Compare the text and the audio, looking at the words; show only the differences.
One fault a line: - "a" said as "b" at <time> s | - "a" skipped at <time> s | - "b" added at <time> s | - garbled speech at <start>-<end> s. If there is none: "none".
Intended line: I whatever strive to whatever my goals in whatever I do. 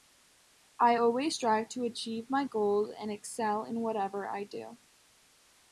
- "whatever" said as "always" at 0.9 s
- "whatever" said as "achieve" at 1.8 s
- "and excel" added at 3.0 s